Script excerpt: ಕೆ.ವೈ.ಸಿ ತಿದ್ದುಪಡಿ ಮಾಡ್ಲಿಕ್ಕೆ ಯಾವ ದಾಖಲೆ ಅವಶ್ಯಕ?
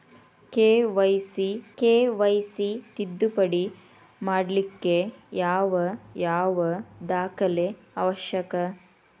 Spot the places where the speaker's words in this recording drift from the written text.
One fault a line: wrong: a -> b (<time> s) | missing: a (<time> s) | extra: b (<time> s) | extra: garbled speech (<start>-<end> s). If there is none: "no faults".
extra: ಕೆ.ವೈ.ಸಿ (1.8 s)
extra: ಯಾವ (6.2 s)